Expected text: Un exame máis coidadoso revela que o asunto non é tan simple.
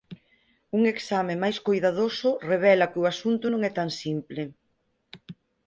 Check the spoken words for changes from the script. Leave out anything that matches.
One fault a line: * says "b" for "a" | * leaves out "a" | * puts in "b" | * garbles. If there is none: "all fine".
all fine